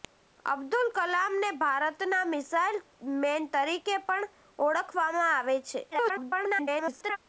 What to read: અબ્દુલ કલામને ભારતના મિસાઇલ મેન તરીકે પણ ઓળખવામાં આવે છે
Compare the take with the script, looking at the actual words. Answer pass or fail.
fail